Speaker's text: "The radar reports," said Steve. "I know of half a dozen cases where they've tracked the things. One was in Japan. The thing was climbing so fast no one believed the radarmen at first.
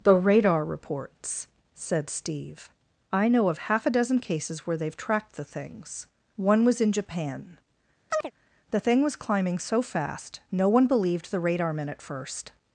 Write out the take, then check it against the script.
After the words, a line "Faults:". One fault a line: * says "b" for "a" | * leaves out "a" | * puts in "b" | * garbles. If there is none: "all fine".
"The radar reports," said Steve. "I know of half a dozen cases where they've tracked the things. One was in Japan. The thing was climbing so fast no one believed the radarmen at first.
Faults:
all fine